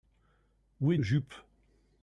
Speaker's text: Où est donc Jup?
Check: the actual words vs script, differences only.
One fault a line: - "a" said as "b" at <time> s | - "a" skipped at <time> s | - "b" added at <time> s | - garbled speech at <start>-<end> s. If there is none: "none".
- "donc" skipped at 1.0 s